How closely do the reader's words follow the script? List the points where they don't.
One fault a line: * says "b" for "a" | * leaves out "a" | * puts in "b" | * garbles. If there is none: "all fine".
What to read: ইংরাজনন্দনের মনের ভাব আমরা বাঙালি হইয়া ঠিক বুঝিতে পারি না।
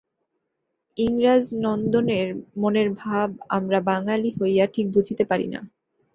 all fine